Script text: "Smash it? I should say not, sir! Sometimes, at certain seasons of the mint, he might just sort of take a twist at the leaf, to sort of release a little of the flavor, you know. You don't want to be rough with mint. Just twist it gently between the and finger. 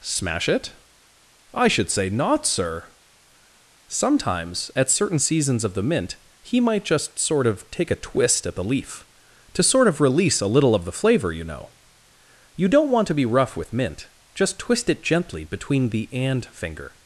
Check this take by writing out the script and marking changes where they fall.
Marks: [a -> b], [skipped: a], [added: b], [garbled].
"Smash it? I should say not, sir! Sometimes, at certain seasons of the mint, he might just sort of take a twist at the leaf, to sort of release a little of the flavor, you know. You don't want to be rough with mint. Just twist it gently between the and finger.